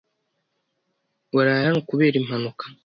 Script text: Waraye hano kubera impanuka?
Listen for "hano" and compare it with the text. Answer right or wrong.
right